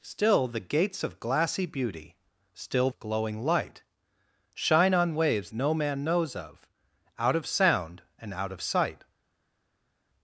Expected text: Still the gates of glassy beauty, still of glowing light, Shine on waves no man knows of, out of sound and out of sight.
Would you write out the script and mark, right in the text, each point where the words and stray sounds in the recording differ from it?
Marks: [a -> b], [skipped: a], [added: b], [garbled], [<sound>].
Still the gates of glassy beauty, still of glowing light, Shine on waves no man knows of, out of sound and out of sight.